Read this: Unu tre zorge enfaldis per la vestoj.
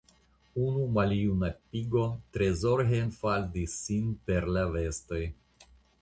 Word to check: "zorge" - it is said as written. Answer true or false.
true